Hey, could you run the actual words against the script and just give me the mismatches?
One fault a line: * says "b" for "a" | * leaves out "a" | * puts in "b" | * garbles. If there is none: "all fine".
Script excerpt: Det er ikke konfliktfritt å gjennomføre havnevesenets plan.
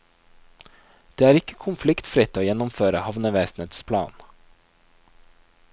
all fine